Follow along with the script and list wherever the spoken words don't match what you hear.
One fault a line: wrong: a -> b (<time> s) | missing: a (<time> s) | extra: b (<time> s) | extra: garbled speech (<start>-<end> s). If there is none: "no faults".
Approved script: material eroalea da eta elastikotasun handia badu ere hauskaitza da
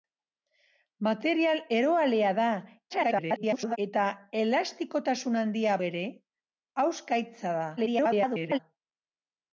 extra: garbled speech (2.9-3.8 s)
missing: badu (5.7 s)
extra: garbled speech (7.8-8.6 s)